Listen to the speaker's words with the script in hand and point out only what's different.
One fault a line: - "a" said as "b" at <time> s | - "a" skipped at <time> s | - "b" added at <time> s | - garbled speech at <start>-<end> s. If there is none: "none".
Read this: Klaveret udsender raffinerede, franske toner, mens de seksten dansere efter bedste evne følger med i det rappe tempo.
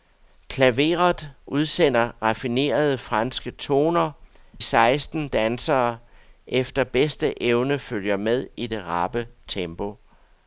- "mens de" skipped at 4.1 s